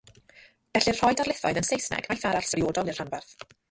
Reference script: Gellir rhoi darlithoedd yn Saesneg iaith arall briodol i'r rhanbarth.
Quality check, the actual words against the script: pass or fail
pass